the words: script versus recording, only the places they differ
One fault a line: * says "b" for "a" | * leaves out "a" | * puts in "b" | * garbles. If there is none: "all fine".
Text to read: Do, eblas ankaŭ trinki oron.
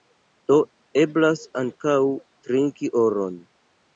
all fine